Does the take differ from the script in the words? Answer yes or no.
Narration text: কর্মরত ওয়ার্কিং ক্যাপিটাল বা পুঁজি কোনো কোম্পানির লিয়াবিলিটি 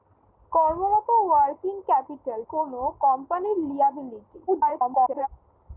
yes